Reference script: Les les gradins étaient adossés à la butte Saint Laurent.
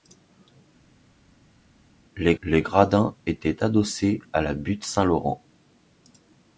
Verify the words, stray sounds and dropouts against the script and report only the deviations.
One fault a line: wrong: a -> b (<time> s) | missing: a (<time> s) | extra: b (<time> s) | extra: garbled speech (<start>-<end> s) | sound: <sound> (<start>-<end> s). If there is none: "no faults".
no faults